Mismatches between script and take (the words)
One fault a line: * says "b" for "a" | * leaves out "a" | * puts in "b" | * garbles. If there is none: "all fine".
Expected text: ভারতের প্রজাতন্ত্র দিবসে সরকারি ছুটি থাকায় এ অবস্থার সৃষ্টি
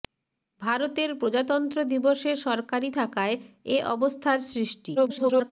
* leaves out "ছুটি"
* garbles